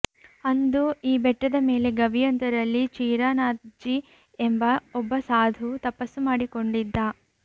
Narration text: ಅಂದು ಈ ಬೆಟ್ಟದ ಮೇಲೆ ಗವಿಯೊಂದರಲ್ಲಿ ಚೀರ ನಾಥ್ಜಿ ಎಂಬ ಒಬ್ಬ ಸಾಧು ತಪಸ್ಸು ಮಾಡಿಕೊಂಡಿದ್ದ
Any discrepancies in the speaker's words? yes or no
no